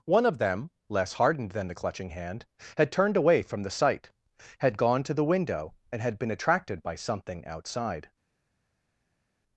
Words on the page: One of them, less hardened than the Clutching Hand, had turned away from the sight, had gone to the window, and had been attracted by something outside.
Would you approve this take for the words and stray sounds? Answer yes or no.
yes